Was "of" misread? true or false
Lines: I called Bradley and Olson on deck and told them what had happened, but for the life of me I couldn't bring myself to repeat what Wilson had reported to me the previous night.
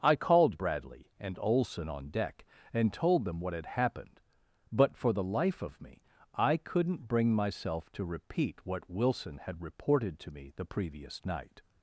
false